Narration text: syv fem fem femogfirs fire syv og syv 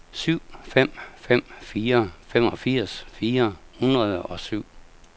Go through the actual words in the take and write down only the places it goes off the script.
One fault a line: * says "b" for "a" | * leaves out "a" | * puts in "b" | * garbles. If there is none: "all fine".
* puts in "fire"
* says "hundrede" for "syv"